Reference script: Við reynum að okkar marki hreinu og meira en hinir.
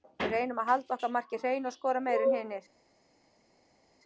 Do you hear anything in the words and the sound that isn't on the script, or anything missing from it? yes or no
yes